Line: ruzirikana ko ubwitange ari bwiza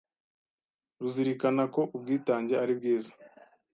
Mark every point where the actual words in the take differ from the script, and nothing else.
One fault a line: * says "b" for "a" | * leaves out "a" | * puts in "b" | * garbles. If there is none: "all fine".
all fine